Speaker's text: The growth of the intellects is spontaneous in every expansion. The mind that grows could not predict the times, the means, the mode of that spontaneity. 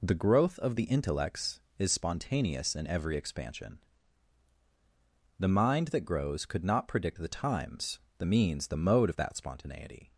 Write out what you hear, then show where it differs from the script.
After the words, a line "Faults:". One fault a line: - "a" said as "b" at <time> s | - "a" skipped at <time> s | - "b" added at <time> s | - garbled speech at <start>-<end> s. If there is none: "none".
The growth of the intellects is spontaneous in every expansion. The mind that grows could not predict the times, the means, the mode of that spontaneity.
Faults:
none